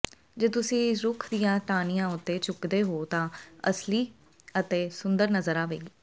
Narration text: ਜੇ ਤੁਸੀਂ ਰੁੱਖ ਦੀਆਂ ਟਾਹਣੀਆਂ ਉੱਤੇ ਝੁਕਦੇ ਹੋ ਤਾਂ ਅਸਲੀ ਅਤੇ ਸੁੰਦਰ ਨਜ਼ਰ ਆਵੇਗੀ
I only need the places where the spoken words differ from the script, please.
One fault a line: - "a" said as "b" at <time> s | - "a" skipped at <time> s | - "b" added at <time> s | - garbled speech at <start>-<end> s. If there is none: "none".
- "ਇਹ" added at 3.3 s